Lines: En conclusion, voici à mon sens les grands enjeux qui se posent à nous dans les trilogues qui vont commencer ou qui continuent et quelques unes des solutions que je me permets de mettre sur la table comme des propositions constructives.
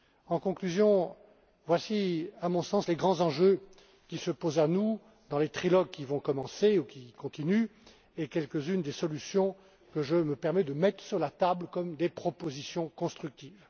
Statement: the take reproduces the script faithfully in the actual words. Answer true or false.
true